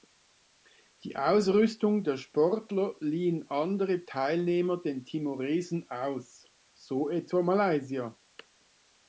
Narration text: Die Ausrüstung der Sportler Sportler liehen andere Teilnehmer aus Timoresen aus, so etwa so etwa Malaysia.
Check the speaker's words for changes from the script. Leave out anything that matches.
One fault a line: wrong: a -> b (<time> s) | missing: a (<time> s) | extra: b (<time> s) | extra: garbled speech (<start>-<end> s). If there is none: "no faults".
missing: Sportler (3.0 s)
wrong: aus -> den (4.8 s)
missing: so etwa (7.4 s)